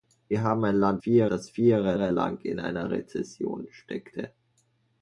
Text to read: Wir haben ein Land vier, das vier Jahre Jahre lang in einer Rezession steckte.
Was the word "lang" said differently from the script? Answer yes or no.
no